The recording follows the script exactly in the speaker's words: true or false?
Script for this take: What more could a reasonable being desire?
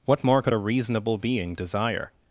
true